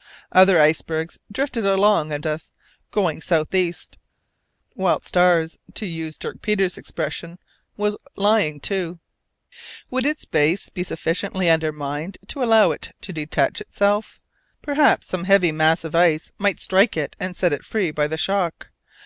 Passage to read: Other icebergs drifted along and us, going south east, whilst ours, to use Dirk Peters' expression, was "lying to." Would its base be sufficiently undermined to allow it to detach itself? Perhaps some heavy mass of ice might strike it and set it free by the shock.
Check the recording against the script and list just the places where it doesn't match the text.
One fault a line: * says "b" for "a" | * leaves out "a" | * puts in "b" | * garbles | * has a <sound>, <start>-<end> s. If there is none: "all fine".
all fine